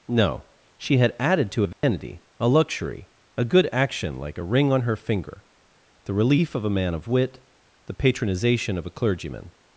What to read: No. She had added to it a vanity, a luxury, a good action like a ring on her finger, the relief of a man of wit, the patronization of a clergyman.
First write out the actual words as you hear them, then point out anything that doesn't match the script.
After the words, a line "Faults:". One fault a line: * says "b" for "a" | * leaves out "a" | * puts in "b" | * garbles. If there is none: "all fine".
No. She had added to a vanity, a luxury, a good action like a ring on her finger, the relief of a man of wit, the patronization of a clergyman.
Faults:
* leaves out "it"